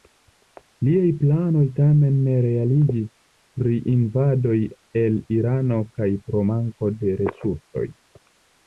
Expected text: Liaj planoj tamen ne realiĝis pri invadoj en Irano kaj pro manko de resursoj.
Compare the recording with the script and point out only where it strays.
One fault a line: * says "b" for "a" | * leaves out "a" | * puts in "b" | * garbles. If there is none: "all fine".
* says "el" for "en"